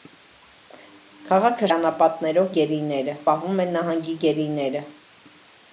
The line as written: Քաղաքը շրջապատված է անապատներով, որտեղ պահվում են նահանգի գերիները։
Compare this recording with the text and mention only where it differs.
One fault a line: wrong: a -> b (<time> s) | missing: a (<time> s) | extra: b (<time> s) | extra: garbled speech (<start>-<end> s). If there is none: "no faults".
missing: շրջապատված (1.7 s)
wrong: որտեղ -> գերիները (2.6 s)